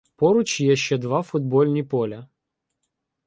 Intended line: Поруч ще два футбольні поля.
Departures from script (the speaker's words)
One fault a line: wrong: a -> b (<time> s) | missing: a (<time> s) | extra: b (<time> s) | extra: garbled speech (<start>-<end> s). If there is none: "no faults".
extra: є (0.6 s)